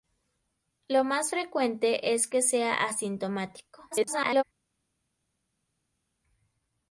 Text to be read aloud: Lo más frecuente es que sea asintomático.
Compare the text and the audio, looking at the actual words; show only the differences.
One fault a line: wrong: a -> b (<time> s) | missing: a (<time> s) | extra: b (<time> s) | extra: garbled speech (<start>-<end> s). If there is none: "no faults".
extra: garbled speech (3.9-4.4 s)